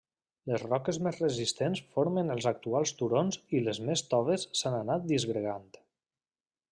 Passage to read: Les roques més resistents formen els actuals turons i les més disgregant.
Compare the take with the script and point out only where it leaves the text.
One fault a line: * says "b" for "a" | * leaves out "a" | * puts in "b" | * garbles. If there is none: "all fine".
* puts in "toves s'han anat"